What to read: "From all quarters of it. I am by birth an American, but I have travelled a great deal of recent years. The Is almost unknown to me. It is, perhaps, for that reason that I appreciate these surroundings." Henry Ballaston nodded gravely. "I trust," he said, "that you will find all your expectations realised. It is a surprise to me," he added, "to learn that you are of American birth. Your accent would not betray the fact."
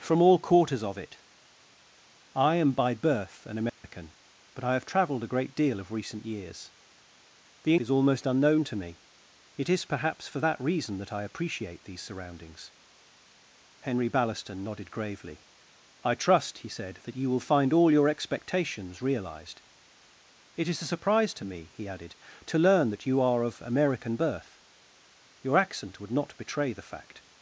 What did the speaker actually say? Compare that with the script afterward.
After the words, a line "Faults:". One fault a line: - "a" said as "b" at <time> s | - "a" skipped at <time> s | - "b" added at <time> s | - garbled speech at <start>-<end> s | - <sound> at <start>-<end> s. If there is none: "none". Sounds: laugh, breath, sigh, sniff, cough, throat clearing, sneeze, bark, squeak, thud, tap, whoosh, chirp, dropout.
"From all quarters of it. I am by birth an American, but I have travelled a great deal of recent years. The Is almost unknown to me. It is, perhaps, for that reason that I appreciate these surroundings." Henry Ballaston nodded gravely. "I trust," he said, "that you will find all your expectations realised. It is a surprise to me," he added, "to learn that you are of American birth. Your accent would not betray the fact."
Faults:
- dropout at 3.7-3.8 s